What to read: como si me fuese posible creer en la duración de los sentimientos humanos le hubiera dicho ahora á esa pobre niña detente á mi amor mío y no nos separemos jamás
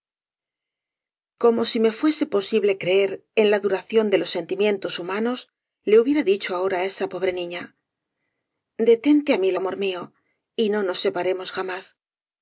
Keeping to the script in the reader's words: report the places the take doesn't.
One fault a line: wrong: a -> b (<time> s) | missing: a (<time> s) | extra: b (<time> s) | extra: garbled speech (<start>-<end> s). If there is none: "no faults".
no faults